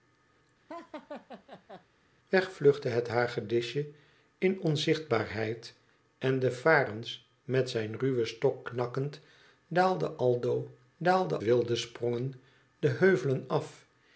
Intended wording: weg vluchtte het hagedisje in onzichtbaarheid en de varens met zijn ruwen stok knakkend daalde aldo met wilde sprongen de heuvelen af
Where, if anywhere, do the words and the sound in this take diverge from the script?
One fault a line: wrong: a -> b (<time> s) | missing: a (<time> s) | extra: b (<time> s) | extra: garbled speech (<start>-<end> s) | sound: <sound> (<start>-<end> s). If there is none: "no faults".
sound: laugh (0.7-1.9 s)
wrong: met -> daalde (11.0 s)